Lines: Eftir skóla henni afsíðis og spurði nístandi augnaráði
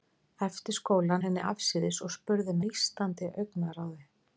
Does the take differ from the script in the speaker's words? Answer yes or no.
no